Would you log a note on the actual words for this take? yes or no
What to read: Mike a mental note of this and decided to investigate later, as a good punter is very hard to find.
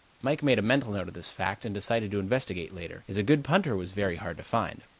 yes